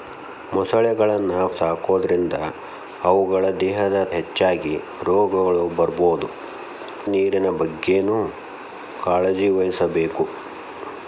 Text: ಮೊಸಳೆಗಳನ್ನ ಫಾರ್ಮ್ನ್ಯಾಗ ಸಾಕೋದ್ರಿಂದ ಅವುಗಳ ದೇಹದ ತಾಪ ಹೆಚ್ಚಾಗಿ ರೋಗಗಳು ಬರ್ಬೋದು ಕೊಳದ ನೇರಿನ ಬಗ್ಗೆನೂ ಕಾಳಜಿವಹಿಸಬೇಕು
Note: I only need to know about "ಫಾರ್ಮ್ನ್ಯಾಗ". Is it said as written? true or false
false